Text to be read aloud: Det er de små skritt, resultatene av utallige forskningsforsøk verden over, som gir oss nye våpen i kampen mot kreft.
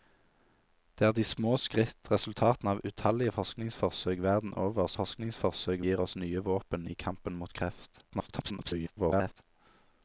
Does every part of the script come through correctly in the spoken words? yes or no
no